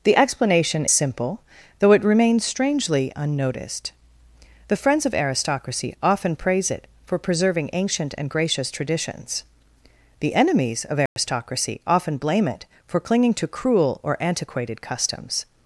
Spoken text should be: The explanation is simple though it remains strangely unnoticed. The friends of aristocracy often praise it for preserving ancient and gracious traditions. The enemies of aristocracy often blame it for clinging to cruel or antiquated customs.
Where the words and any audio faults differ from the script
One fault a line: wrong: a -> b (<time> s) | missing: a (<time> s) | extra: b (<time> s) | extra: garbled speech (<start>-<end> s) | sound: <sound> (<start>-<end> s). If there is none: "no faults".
missing: is (0.8 s)
sound: dropout (11.1-11.2 s)